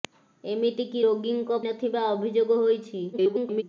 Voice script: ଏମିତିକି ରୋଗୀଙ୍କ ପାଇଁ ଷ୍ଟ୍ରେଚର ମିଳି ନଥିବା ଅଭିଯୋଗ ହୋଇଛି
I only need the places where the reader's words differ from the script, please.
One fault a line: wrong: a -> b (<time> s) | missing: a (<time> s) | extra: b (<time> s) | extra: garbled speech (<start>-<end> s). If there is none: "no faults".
missing: ପାଇଁ ଷ୍ଟ୍ରେଚର ମିଳି (1.6 s)
extra: garbled speech (3.1-3.6 s)